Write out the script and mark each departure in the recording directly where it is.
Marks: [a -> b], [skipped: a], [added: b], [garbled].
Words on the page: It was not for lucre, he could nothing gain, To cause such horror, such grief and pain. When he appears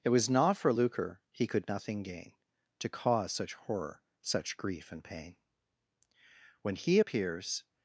It was not for lucre, he could nothing gain, To cause such horror, such grief and pain. When he appears